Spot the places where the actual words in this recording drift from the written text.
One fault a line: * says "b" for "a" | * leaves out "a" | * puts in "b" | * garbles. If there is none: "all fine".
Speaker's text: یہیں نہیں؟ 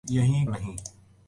all fine